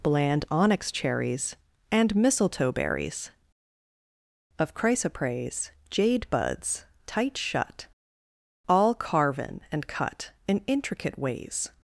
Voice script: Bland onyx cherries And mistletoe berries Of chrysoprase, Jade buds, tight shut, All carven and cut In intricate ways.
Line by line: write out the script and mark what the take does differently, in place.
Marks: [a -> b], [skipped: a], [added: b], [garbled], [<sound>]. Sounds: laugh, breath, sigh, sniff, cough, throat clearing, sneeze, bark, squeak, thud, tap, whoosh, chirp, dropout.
Bland onyx cherries And mistletoe berries Of chrysoprase, Jade buds, tight shut, All carven and cut In intricate ways.